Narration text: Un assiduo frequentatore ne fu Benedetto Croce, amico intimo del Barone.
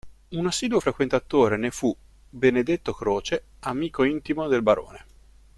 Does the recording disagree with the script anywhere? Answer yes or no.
no